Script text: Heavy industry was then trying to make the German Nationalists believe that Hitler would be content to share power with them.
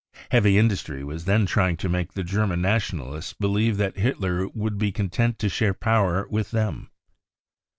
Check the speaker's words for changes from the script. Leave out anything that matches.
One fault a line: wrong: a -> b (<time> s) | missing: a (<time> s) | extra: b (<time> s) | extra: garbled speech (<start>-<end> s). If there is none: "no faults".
no faults